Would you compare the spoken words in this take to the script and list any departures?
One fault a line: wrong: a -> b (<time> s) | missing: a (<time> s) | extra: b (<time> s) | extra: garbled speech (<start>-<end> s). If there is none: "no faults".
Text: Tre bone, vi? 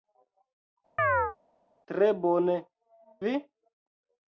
no faults